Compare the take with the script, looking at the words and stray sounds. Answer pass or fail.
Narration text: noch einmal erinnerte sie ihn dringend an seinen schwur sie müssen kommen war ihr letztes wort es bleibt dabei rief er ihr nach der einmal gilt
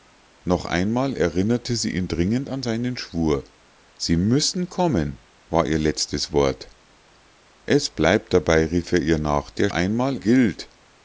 pass